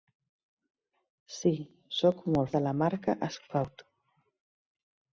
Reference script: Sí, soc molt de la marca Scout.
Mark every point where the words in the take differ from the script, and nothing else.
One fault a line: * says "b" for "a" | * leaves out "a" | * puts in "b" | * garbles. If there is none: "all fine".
all fine